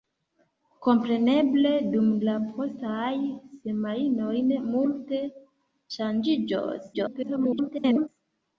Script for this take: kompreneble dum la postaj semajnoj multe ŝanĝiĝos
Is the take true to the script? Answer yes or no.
no